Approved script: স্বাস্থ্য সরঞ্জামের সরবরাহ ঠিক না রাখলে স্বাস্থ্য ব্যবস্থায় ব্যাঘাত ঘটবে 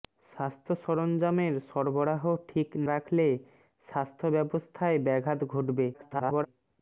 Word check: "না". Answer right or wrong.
wrong